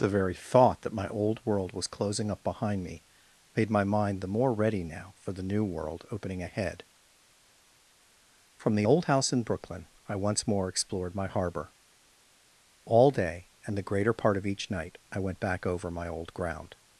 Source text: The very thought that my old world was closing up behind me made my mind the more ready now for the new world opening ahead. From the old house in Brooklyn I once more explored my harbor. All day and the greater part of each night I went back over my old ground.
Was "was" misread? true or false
false